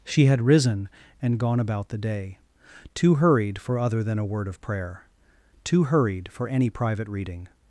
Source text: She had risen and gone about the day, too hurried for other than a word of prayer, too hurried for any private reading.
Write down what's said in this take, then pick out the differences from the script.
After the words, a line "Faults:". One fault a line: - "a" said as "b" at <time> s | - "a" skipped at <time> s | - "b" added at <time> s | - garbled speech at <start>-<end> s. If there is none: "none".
She had risen and gone about the day, too hurried for other than a word of prayer, too hurried for any private reading.
Faults:
none